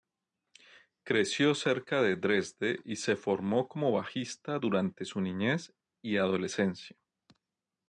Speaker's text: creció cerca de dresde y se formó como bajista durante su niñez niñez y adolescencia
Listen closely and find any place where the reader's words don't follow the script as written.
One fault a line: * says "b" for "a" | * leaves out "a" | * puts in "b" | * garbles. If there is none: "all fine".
* leaves out "niñez"